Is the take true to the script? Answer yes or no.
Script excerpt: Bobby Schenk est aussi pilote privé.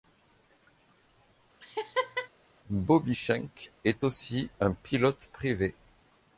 no